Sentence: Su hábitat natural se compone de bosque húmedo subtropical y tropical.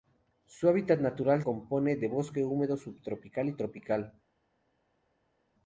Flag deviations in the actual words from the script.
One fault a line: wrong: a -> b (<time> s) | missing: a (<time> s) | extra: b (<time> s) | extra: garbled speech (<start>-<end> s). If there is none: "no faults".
missing: se (1.4 s)